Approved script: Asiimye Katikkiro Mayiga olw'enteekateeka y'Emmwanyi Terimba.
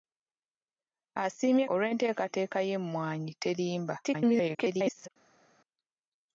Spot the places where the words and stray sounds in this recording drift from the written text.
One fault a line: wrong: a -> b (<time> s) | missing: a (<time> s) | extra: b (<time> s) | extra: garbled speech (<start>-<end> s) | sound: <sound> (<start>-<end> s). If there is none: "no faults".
missing: Katikkiro Mayiga (1.6 s)
extra: garbled speech (4.0-5.1 s)